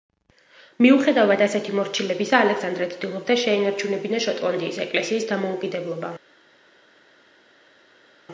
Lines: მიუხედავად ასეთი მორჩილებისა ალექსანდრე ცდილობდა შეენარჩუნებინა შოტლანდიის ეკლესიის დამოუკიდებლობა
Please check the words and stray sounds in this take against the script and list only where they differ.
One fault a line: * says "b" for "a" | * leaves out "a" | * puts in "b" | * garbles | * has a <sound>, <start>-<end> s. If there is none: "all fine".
all fine